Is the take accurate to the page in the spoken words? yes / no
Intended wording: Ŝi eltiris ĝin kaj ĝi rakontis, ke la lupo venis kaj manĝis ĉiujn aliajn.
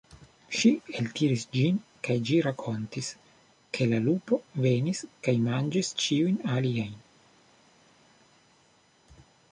yes